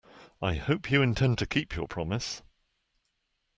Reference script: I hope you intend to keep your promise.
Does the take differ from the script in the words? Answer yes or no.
no